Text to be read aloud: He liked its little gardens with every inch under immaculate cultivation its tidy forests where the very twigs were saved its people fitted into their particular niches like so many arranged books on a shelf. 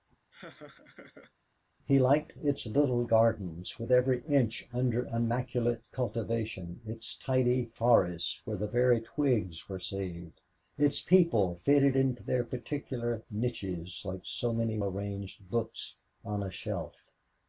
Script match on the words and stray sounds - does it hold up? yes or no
no